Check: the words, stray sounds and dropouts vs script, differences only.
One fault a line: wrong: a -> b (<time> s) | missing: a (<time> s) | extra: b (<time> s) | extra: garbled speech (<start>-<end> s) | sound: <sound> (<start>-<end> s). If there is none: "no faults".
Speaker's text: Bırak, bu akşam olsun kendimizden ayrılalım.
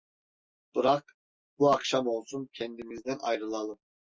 no faults